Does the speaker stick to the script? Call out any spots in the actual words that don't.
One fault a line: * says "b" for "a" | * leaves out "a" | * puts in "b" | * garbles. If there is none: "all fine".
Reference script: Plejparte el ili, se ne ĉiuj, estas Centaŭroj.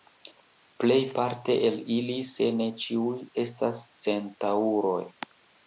all fine